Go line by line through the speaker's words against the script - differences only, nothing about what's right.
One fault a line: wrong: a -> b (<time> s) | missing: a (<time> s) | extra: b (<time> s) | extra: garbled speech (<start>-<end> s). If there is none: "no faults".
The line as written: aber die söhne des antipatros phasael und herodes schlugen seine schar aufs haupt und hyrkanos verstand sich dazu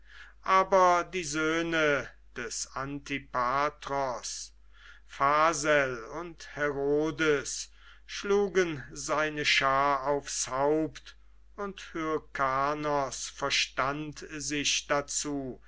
no faults